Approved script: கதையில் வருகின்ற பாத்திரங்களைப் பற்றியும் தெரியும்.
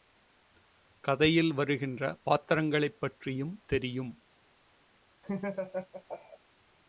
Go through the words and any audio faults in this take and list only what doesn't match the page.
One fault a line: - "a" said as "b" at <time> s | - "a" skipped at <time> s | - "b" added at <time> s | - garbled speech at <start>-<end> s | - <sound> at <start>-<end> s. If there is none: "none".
- laugh at 5.2-6.4 s